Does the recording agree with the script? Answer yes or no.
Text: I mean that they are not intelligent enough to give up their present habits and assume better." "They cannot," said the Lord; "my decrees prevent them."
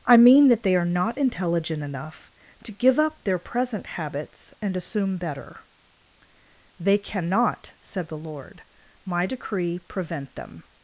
no